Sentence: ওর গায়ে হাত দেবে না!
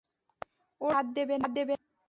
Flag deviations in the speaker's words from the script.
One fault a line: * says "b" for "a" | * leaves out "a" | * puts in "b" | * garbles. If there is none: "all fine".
all fine